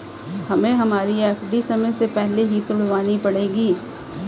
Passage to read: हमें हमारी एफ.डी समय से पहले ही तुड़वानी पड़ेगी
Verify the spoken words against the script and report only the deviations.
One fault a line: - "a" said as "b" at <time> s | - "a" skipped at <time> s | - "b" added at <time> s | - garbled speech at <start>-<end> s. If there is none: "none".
none